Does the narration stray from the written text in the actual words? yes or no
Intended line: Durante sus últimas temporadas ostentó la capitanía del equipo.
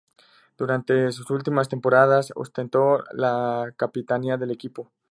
no